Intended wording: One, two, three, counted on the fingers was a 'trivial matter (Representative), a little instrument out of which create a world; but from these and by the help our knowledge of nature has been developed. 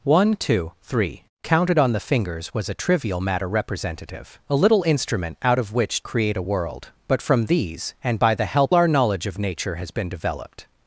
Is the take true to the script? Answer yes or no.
yes